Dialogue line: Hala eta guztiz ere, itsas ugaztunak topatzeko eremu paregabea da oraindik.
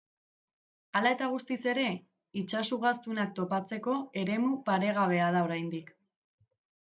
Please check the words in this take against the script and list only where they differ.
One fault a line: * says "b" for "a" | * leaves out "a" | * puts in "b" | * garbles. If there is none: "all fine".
all fine